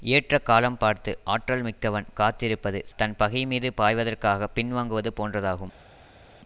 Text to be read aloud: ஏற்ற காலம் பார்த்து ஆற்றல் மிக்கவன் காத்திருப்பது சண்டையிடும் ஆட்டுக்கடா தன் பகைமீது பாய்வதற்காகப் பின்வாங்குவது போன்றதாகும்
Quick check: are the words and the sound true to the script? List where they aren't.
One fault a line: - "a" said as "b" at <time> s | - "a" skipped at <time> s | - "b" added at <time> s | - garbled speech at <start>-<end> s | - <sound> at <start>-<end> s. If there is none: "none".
- "சண்டையிடும் ஆட்டுக்கடா" skipped at 2.8 s